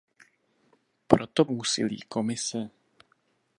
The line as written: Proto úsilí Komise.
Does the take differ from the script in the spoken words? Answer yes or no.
no